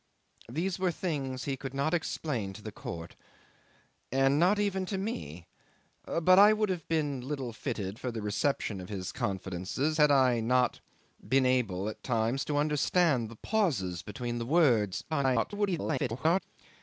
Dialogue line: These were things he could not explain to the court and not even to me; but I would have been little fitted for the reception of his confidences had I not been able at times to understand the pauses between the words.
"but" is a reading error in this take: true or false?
false